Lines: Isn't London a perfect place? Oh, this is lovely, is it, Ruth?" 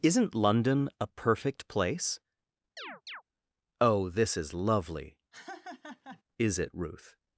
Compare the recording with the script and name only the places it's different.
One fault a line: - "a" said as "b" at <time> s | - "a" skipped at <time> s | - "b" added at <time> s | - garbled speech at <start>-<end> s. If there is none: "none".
none